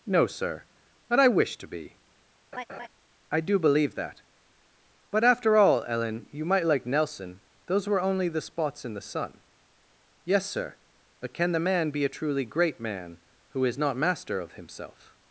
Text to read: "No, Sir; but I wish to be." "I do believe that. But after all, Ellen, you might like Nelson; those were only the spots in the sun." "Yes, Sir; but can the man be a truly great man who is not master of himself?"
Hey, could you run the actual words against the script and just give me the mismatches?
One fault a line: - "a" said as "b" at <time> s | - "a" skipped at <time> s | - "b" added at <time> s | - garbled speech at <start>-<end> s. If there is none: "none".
none